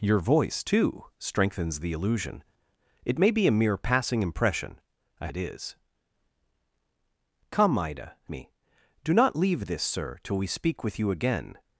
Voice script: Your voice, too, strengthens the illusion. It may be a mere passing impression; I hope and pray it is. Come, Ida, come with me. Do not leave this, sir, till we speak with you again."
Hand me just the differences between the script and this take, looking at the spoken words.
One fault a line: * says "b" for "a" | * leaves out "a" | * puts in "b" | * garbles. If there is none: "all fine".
* leaves out "hope and pray"
* leaves out "come with"